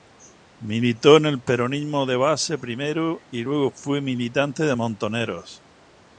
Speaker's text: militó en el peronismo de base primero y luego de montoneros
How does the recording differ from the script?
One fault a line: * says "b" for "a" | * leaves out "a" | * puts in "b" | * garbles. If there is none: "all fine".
* puts in "fue militante"